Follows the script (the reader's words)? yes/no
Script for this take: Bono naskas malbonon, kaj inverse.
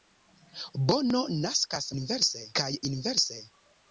no